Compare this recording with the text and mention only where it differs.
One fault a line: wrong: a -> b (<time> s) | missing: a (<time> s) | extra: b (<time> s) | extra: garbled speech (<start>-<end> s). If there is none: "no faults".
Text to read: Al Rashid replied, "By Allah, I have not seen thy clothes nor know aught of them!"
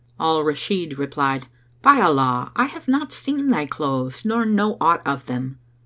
no faults